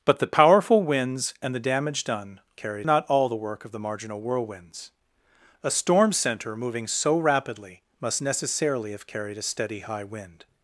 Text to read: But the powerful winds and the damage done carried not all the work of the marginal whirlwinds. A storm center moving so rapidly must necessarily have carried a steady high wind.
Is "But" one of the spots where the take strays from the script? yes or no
no